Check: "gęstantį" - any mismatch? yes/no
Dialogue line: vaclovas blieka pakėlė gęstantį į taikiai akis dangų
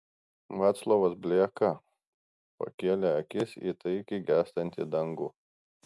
yes